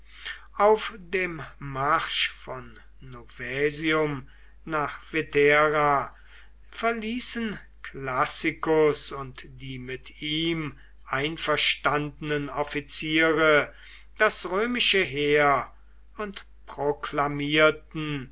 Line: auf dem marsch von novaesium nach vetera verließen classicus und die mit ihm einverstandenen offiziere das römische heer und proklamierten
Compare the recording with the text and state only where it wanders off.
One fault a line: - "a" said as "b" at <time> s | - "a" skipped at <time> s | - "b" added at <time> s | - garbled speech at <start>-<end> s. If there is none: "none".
none